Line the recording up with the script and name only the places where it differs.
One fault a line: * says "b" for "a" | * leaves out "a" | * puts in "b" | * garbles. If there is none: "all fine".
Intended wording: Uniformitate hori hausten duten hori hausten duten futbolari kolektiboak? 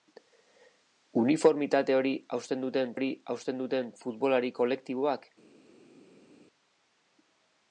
all fine